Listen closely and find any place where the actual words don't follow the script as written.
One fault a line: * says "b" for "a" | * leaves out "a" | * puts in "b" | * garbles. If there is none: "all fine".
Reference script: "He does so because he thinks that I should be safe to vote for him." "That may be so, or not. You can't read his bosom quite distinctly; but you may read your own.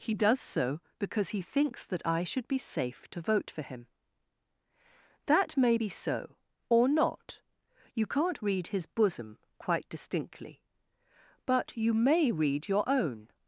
all fine